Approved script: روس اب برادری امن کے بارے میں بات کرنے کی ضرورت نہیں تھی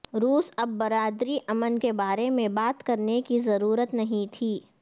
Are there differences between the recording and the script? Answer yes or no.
no